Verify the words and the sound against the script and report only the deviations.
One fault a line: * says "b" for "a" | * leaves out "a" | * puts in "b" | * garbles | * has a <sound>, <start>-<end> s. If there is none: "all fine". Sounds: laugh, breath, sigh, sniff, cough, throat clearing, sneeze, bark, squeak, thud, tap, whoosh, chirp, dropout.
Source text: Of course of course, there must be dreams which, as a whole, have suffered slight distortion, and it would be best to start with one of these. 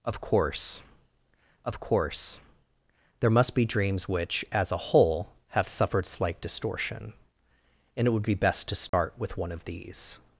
* has a dropout, 8.9-8.9 s